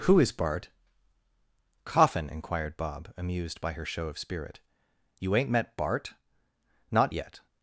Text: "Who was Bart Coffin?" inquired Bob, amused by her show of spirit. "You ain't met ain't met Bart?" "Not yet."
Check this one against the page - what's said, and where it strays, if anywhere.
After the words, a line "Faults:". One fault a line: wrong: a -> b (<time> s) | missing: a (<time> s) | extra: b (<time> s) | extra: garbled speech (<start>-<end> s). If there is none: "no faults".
"Who is Bart Coffin?" inquired Bob, amused by her show of spirit. "You ain't met Bart?" "Not yet."
Faults:
wrong: was -> is (0.2 s)
missing: ain't met (5.8 s)